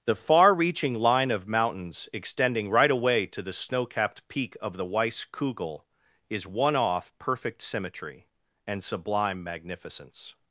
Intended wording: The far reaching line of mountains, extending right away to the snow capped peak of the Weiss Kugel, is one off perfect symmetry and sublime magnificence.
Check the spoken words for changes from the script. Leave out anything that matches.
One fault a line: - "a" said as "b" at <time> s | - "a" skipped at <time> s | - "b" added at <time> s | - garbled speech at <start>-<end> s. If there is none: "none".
none